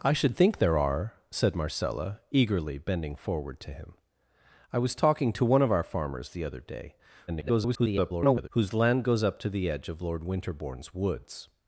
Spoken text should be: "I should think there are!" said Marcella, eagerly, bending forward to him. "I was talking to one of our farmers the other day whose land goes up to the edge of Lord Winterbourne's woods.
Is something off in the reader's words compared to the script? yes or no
yes